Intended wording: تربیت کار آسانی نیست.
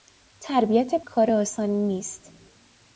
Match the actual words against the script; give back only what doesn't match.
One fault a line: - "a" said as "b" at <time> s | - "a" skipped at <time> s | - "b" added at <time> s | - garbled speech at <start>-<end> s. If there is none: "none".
none